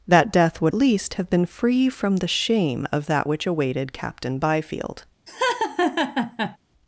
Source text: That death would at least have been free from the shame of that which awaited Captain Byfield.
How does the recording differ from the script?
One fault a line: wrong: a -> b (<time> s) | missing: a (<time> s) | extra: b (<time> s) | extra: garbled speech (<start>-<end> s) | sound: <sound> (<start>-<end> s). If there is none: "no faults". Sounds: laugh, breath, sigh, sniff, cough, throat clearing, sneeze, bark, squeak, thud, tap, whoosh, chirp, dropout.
missing: at (0.7 s)
sound: laugh (5.3-6.6 s)